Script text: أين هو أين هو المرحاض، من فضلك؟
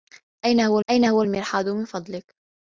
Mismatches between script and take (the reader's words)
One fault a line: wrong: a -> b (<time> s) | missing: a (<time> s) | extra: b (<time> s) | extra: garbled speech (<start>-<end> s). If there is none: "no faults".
no faults